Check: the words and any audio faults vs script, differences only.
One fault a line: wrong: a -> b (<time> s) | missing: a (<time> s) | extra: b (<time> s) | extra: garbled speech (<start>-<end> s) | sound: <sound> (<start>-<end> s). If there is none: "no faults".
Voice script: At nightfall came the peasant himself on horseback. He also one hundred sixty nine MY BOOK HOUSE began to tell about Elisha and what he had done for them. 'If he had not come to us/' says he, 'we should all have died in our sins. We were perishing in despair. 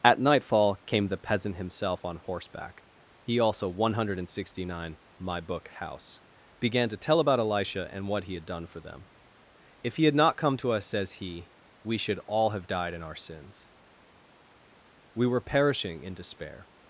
no faults